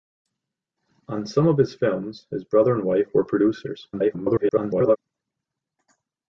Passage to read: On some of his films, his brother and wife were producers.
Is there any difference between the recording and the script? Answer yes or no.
yes